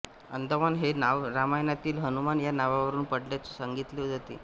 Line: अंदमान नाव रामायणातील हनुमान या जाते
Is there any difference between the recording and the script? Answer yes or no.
yes